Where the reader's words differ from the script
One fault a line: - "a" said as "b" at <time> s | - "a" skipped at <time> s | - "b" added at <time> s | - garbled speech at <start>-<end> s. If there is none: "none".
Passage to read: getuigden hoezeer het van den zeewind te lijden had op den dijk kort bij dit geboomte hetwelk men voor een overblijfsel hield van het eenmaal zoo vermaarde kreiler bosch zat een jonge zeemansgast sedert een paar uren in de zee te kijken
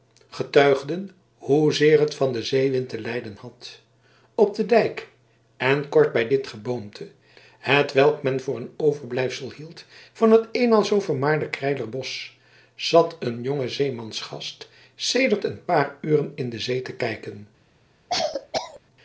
- "en" added at 5.6 s